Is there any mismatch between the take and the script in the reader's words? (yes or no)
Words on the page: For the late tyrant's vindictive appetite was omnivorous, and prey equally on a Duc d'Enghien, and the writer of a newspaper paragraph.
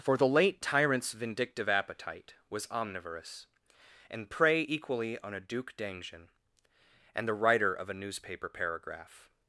no